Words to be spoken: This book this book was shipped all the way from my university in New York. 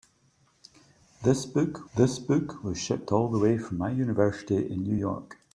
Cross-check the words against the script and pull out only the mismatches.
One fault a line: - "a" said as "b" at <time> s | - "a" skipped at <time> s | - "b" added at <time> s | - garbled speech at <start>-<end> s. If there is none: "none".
none